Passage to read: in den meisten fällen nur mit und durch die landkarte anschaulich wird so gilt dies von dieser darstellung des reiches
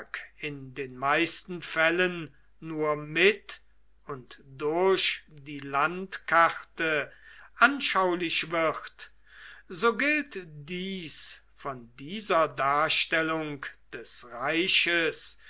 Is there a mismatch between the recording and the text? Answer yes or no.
no